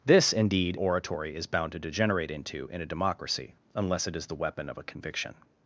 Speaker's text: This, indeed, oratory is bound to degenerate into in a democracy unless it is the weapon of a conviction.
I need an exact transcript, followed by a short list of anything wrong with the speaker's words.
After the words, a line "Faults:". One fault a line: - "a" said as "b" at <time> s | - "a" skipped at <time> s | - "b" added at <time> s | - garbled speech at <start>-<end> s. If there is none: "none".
This, indeed, oratory is bound to degenerate into in a democracy unless it is the weapon of a conviction.
Faults:
none